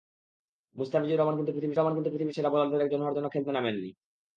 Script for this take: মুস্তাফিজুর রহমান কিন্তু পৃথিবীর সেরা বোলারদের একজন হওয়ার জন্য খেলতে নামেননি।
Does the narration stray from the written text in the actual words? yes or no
yes